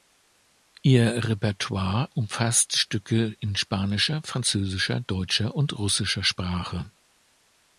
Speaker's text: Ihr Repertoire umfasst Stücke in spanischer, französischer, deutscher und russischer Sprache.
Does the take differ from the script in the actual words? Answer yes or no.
no